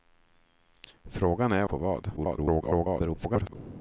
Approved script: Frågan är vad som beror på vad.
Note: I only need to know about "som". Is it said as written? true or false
false